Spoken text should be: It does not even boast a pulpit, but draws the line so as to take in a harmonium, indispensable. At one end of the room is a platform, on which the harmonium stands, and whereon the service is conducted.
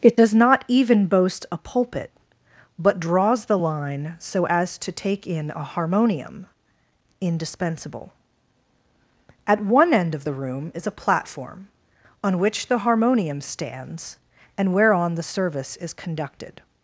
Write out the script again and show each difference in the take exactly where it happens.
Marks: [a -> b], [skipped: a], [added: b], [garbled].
It does not even boast a pulpit, but draws the line so as to take in a harmonium, indispensable. At one end of the room is a platform, on which the harmonium stands, and whereon the service is conducted.